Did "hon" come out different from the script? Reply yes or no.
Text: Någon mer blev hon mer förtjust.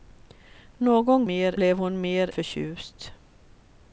no